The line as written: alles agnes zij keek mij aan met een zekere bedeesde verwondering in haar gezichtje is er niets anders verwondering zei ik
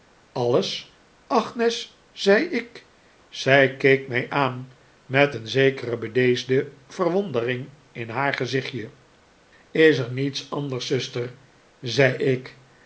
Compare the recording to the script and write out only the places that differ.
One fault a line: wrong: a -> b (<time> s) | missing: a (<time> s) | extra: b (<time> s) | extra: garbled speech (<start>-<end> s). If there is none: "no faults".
extra: zei ik (2.1 s)
wrong: verwondering -> zuster (10.9 s)